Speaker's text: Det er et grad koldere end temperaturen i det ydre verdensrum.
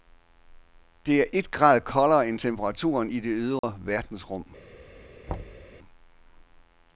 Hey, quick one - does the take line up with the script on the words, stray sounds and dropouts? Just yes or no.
no